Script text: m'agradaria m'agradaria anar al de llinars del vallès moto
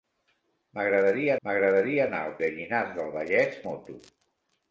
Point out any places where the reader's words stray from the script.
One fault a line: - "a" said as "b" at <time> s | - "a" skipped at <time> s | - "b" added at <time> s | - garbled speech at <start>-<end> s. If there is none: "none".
none